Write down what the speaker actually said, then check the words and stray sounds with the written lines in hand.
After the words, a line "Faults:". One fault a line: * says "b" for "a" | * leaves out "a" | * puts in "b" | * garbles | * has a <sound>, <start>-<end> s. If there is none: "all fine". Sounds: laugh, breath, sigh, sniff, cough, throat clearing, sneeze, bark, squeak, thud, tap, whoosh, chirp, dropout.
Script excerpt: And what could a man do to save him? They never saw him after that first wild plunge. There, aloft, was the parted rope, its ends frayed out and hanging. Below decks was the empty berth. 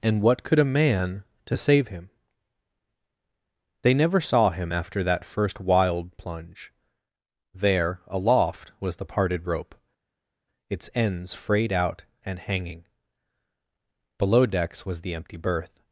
And what could a man to save him? They never saw him after that first wild plunge. There, aloft, was the parted rope, its ends frayed out and hanging. Below decks was the empty berth.
Faults:
* leaves out "do"